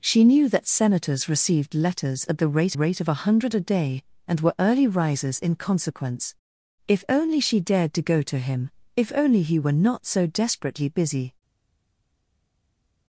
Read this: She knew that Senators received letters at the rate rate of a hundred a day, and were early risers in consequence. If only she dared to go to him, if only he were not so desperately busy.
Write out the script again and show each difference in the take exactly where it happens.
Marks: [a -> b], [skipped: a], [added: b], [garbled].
She knew that Senators received letters at the rate rate of a hundred a day, and were early risers in consequence. If only she dared to go to him, if only he were not so desperately busy.